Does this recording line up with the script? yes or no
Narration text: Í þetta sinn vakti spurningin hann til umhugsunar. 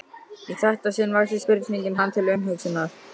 yes